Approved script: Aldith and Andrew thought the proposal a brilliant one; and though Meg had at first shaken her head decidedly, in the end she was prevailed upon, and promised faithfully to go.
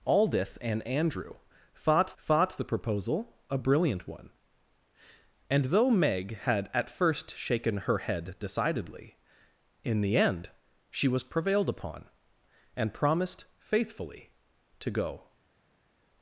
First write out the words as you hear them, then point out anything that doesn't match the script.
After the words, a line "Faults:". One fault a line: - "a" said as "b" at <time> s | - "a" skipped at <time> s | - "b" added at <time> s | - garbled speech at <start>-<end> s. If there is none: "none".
Aldith and Andrew thought thought the proposal a brilliant one; and though Meg had at first shaken her head decidedly, in the end she was prevailed upon, and promised faithfully to go.
Faults:
- "thought" added at 2.2 s